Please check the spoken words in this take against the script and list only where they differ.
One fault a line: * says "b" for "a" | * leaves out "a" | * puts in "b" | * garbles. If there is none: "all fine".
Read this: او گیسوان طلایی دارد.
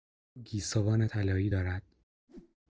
all fine